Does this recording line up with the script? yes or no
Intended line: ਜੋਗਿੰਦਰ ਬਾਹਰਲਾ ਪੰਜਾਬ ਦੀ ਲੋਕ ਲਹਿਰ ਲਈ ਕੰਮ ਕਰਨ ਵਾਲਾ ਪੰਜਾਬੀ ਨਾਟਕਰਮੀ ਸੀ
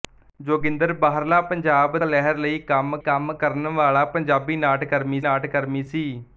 no